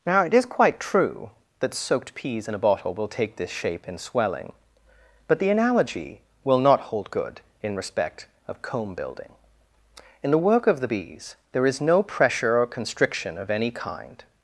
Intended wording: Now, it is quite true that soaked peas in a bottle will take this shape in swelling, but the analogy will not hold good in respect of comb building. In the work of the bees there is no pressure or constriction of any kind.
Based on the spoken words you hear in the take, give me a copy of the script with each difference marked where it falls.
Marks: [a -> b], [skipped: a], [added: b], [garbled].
Now, it is quite true that soaked peas in a bottle will take this shape in swelling, but the analogy will not hold good in respect of comb building. In the work of the bees there is no pressure or constriction of any kind.